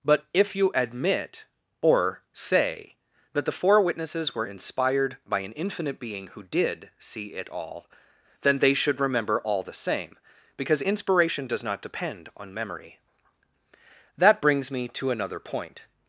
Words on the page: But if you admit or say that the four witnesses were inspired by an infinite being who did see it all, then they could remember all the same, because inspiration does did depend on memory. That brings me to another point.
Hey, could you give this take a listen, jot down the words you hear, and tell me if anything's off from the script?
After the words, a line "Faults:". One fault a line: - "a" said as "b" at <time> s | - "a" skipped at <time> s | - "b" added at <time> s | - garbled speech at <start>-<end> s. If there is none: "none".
But if you admit or say that the four witnesses were inspired by an infinite being who did see it all, then they should remember all the same, because inspiration does not depend on memory. That brings me to another point.
Faults:
- "could" said as "should" at 8.7 s
- "did" said as "not" at 11.6 s